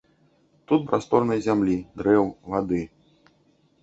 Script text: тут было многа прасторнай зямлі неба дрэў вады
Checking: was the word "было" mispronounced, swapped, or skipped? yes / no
yes